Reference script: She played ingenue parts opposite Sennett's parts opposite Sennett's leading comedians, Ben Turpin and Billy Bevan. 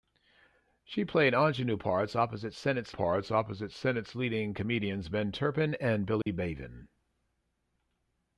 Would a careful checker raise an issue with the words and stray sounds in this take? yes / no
yes